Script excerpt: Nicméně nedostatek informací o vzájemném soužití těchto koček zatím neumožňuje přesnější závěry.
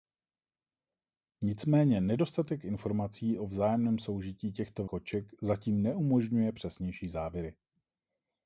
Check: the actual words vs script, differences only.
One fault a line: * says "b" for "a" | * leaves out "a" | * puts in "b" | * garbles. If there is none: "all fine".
all fine